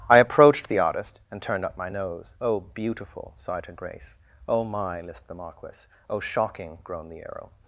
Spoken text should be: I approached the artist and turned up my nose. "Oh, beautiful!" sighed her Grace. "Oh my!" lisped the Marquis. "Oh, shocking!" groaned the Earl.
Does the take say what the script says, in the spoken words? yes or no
yes